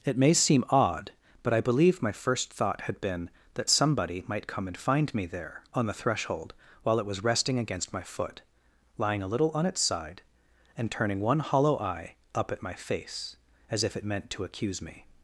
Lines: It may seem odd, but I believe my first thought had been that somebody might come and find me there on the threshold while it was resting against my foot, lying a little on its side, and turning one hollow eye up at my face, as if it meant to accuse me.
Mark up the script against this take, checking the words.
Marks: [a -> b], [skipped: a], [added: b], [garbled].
It may seem odd, but I believe my first thought had been that somebody might come and find me there on the threshold while it was resting against my foot, lying a little on its side, and turning one hollow eye up at my face, as if it meant to accuse me.